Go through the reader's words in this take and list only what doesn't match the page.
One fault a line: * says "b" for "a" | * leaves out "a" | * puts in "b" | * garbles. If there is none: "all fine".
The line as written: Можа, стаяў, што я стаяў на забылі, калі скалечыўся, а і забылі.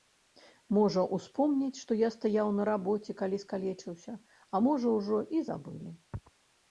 * says "успомняць" for "стаяў"
* says "рабоце" for "забылі"
* puts in "можа ужо"